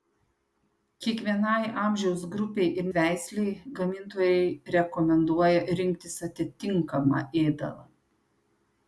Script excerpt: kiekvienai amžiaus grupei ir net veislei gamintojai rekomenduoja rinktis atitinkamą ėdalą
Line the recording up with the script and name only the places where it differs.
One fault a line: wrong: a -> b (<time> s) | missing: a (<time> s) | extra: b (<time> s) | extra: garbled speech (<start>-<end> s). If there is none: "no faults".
missing: net (2.9 s)